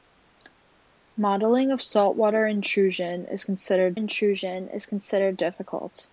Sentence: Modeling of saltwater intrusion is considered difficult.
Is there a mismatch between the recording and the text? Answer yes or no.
yes